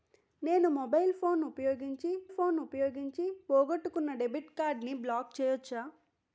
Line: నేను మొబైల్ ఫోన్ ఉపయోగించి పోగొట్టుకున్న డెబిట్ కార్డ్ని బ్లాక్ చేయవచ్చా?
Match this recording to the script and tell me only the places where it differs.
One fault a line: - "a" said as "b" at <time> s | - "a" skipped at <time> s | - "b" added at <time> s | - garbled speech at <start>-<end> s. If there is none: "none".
- "ఫోన్ ఉపయోగించి" added at 2.3 s